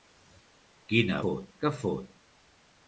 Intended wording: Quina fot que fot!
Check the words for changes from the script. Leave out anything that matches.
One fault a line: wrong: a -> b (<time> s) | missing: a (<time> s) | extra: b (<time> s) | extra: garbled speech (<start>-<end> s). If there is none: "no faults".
no faults